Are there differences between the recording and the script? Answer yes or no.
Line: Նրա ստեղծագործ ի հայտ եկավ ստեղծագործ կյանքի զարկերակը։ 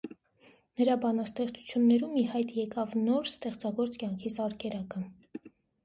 yes